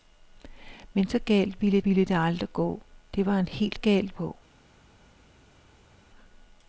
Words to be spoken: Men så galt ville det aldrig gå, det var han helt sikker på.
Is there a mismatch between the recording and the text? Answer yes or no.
yes